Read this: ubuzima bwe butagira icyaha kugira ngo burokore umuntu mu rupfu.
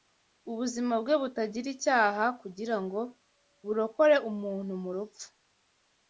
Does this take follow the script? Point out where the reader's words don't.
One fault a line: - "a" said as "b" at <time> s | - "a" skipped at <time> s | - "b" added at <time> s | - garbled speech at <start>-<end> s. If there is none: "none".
none